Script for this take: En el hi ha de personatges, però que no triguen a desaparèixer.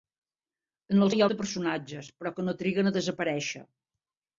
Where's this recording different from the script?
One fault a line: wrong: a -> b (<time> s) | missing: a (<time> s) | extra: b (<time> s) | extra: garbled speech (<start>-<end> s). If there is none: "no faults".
no faults